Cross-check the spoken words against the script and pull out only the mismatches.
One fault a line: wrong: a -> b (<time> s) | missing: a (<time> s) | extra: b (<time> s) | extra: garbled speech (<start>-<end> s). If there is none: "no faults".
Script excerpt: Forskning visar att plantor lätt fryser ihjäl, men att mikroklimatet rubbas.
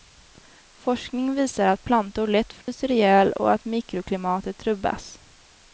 wrong: men -> och (3.3 s)